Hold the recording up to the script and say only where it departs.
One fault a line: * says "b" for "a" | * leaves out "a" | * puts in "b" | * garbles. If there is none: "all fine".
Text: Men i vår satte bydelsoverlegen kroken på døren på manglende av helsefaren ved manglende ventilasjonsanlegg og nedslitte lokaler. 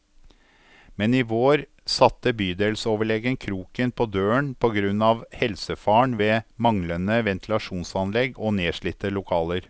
* says "grunn" for "manglende"